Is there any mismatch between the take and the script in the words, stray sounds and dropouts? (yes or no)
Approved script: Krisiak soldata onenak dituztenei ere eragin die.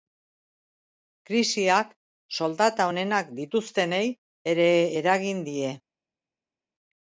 no